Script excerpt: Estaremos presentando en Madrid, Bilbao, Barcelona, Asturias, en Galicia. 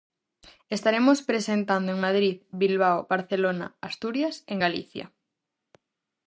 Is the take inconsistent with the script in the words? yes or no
no